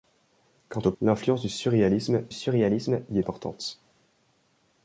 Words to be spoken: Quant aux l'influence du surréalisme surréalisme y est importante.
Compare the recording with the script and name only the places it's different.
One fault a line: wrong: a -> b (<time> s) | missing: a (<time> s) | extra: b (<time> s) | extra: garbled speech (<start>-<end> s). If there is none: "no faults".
no faults